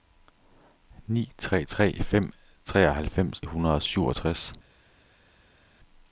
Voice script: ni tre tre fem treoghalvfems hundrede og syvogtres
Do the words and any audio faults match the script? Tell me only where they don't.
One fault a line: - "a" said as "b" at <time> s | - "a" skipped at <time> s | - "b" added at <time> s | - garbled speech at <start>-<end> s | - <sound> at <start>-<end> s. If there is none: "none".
none